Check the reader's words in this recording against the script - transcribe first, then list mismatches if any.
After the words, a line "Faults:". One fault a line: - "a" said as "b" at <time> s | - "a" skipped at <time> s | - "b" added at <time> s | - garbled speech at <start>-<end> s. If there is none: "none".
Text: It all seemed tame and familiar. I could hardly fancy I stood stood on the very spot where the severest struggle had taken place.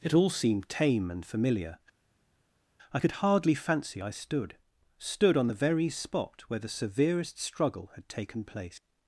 It all seemed tame and familiar. I could hardly fancy I stood stood on the very spot where the severest struggle had taken place.
Faults:
none